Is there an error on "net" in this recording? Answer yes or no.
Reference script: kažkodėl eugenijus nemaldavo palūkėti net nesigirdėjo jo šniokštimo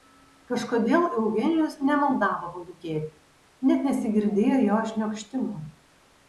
no